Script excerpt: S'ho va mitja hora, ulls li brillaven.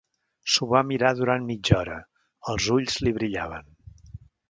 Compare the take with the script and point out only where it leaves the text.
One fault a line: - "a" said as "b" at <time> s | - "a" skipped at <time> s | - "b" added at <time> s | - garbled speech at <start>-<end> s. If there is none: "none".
- "mirar durant" added at 0.9 s
- "els" added at 2.5 s